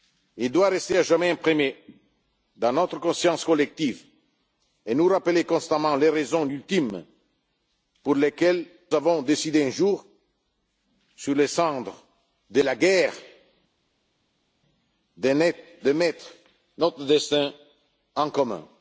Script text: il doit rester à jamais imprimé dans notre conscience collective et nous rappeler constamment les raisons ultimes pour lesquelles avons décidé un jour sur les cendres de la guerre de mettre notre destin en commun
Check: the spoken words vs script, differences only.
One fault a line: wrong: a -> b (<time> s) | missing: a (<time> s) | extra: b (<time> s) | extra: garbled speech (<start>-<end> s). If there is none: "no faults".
no faults